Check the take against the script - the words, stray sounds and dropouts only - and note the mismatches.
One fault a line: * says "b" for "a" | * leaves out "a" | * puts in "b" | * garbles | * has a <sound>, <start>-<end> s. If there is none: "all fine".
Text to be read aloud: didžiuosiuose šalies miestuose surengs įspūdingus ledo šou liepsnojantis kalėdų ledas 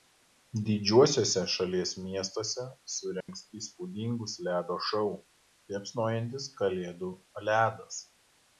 * has a dropout, 3.2-3.3 s